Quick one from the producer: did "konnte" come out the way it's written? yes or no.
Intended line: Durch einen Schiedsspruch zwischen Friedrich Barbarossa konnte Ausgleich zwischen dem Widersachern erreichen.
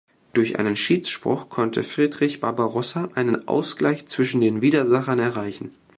no